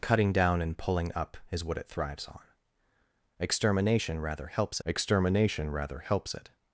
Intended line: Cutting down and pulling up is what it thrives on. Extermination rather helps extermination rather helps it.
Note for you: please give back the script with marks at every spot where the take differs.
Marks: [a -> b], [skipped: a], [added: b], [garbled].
Cutting down and pulling up is what it thrives on. Extermination rather helps extermination rather helps it.